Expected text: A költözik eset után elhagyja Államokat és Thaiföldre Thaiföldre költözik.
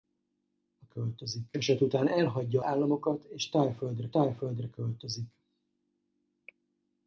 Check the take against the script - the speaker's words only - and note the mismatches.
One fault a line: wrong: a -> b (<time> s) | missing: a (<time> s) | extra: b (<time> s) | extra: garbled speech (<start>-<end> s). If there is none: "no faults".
no faults